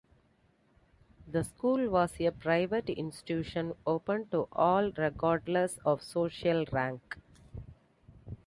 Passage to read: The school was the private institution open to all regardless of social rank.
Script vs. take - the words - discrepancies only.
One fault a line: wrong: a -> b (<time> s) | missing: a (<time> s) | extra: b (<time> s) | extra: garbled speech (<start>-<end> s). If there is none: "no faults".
wrong: the -> a (2.2 s)